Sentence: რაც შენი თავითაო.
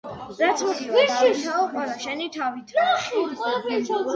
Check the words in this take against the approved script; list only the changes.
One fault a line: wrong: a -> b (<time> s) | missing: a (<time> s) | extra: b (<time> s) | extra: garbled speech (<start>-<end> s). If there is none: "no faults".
extra: მოგივა დავითაო ყველა (0.7 s)